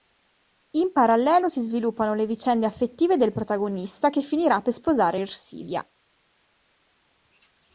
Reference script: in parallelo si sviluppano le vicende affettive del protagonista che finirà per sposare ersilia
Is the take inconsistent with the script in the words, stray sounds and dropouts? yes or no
no